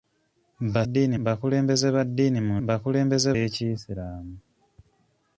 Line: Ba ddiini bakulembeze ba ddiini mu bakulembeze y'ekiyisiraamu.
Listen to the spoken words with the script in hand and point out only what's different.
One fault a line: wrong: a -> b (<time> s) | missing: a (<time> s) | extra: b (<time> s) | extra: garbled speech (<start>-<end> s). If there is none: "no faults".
no faults